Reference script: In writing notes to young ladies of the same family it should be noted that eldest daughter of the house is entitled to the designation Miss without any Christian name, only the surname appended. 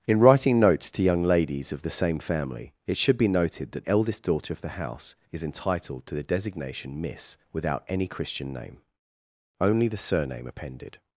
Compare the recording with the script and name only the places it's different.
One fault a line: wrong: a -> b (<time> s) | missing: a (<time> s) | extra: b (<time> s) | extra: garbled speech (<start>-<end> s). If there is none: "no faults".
no faults